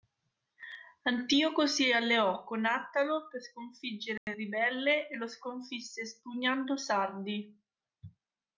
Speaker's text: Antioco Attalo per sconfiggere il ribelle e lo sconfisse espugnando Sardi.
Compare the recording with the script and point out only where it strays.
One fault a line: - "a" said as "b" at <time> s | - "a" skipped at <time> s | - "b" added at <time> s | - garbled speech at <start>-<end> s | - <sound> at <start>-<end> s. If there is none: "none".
- "si alleò con" added at 1.7 s
- dropout at 4.2-4.3 s